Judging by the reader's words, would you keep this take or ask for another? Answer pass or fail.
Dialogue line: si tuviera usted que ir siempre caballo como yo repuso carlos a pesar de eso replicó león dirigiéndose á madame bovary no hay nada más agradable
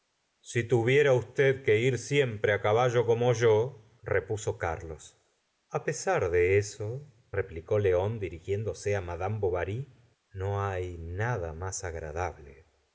pass